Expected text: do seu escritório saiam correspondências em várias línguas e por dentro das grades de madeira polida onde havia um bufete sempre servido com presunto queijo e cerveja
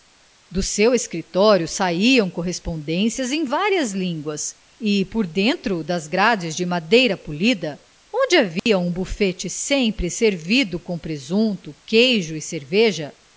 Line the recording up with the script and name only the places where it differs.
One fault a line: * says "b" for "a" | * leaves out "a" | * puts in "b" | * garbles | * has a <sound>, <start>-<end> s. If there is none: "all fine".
* has a dropout, 8.6-8.7 s